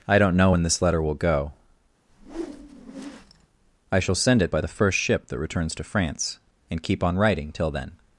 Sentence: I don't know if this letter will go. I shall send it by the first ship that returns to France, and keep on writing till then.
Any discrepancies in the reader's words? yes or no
yes